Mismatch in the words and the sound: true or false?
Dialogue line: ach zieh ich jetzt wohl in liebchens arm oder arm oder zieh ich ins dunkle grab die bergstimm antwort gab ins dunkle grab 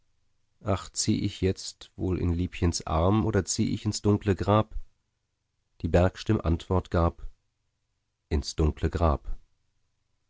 true